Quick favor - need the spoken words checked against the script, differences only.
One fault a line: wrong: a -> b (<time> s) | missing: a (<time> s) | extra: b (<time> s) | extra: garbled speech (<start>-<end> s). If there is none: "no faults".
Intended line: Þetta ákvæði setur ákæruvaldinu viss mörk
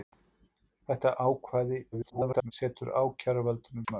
extra: garbled speech (1.9-2.5 s)
missing: viss (3.9 s)